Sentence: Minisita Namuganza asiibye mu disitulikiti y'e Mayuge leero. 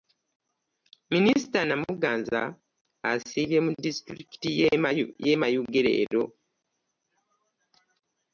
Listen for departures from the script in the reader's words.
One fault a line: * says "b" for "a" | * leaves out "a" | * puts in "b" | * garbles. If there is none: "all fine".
all fine